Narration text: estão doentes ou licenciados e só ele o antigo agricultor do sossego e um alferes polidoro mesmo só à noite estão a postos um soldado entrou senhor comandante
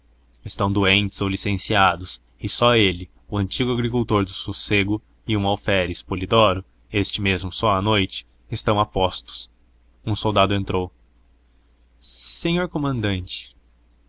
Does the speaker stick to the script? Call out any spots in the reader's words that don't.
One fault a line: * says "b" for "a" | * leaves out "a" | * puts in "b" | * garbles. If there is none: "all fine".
* puts in "este"